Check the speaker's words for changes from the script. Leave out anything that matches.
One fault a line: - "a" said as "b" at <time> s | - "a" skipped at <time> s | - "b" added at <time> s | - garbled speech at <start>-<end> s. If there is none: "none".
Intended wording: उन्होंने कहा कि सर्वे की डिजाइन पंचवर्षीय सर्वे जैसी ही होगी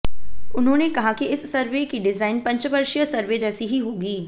- "इस" added at 1.3 s